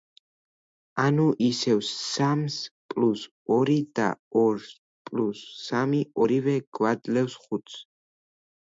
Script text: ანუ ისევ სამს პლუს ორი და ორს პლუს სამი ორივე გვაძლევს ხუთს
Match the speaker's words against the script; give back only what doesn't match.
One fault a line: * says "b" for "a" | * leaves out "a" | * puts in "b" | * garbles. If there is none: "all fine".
all fine